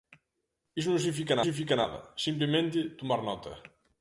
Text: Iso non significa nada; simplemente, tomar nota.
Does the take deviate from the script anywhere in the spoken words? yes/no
yes